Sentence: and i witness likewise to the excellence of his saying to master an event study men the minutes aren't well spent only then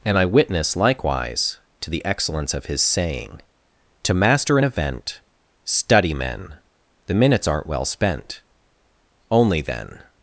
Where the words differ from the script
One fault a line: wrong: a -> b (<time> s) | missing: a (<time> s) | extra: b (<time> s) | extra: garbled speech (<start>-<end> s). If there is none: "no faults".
no faults